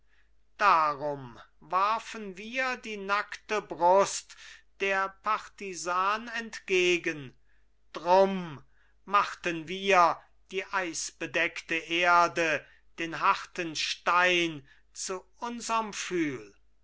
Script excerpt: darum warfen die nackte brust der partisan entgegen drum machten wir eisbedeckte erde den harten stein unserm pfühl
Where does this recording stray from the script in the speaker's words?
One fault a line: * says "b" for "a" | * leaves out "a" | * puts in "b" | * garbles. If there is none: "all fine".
* puts in "wir"
* puts in "die"
* puts in "zu"